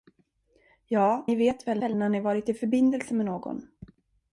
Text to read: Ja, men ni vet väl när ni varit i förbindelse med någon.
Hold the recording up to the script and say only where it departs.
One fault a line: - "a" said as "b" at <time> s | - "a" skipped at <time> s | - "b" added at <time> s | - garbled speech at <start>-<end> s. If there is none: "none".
- "men" skipped at 1.2 s
- "väl" added at 1.8 s